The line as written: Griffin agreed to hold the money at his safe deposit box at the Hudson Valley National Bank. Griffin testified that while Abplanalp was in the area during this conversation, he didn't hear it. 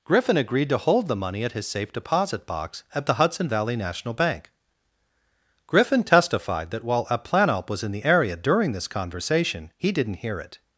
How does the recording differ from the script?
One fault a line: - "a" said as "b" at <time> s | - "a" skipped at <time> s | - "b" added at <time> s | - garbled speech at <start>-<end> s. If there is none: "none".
none